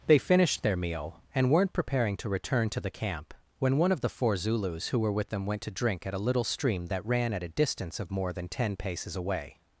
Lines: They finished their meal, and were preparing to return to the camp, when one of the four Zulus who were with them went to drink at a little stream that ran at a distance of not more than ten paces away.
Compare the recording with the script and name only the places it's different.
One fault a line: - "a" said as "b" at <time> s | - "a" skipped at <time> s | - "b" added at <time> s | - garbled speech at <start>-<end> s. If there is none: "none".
- "were" said as "weren't" at 1.5 s
- "not" skipped at 8.1 s